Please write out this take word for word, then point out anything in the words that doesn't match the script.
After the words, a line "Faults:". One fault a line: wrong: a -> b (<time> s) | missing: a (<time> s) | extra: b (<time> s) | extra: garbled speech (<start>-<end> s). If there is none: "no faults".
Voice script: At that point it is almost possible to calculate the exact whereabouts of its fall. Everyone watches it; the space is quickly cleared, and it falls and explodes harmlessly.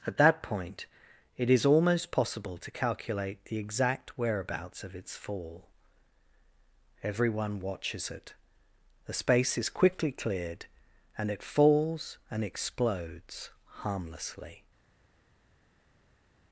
At that point it is almost possible to calculate the exact whereabouts of its fall. Everyone watches it; the space is quickly cleared, and it falls and explodes harmlessly.
Faults:
no faults